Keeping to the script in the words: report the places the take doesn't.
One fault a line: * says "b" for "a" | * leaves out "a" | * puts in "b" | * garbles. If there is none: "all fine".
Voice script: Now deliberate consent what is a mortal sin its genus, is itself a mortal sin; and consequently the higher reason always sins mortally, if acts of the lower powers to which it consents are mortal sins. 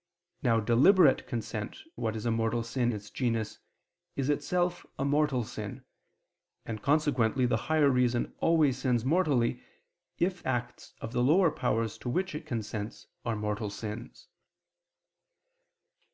all fine